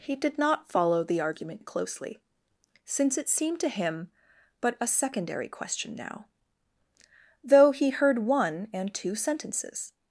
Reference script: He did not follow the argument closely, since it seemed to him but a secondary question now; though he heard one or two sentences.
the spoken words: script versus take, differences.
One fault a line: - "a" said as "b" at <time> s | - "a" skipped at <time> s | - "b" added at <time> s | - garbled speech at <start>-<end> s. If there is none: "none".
- "or" said as "and" at 8.7 s